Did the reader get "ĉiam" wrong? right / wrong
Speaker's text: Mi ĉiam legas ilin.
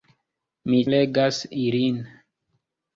wrong